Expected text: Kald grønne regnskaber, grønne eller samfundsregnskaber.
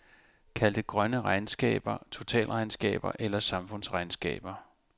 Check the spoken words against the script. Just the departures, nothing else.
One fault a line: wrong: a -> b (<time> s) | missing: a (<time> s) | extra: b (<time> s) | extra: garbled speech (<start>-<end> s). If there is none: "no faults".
extra: det (0.7 s)
wrong: grønne -> totalregnskaber (2.1 s)